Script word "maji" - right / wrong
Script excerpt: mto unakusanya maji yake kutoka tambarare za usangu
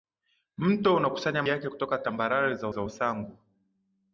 wrong